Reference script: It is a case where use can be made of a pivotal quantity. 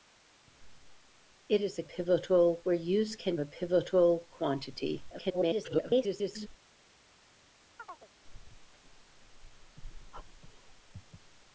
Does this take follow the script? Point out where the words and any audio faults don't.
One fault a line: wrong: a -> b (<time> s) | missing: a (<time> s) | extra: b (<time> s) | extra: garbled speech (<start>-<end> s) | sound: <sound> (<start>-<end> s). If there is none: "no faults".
wrong: case -> pivotal (1.8 s)
missing: be made of (3.3 s)
extra: garbled speech (5.1-6.5 s)
sound: chirp (7.8-8.1 s)